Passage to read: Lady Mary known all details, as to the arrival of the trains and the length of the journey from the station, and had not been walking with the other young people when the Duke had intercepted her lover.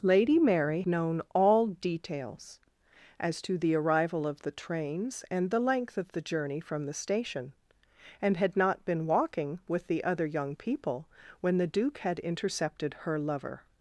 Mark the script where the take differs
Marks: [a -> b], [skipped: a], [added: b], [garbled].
Lady Mary known all details, as to the arrival of the trains and the length of the journey from the station, and had not been walking with the other young people when the Duke had intercepted her lover.